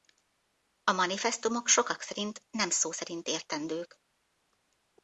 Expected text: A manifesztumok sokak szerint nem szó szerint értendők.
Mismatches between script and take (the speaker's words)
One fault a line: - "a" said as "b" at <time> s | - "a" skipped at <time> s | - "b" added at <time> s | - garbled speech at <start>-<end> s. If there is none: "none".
none